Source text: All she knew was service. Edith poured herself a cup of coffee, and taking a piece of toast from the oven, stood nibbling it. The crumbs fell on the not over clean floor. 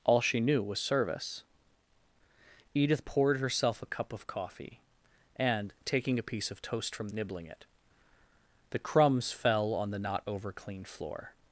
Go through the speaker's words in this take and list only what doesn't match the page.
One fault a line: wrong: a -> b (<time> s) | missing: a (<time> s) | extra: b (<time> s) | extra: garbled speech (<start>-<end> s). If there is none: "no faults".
missing: the oven stood (7.1 s)